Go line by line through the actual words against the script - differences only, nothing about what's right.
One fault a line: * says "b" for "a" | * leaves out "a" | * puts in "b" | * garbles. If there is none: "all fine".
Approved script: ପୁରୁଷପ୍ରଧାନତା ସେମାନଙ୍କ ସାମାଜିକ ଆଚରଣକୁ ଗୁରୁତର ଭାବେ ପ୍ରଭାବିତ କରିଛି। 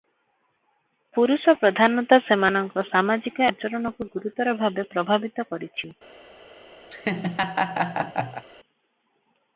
all fine